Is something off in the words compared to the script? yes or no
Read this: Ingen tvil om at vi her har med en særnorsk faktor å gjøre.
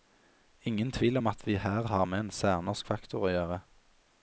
no